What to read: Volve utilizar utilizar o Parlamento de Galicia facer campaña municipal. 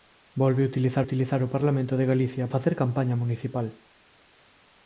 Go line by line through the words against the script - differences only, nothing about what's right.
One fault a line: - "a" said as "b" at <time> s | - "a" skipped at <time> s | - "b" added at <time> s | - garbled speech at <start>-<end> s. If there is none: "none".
none